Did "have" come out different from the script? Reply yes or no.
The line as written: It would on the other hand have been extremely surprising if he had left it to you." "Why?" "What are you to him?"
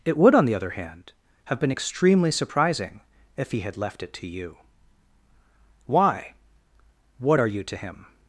no